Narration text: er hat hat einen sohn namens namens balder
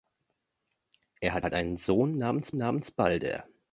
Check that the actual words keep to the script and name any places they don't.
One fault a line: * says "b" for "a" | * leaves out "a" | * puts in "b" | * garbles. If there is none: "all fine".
all fine